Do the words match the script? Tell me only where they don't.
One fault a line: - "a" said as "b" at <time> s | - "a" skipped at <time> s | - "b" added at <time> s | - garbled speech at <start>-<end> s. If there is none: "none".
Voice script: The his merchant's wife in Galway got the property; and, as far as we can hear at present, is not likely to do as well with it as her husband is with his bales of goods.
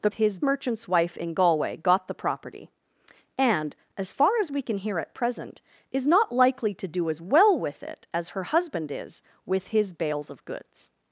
none